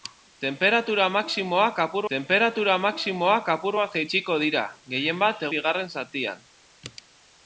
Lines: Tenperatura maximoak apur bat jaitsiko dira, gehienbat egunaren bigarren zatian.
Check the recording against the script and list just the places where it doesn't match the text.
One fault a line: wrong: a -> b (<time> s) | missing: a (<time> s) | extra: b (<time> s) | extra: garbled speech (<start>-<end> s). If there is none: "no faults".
extra: tenperatura maximoak apur (2.1 s)
missing: egunaren (5.5 s)